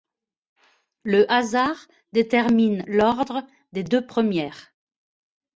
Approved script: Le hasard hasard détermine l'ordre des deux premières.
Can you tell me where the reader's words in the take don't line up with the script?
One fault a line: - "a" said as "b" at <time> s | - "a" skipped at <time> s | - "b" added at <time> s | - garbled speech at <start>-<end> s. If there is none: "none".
- "hasard" skipped at 1.8 s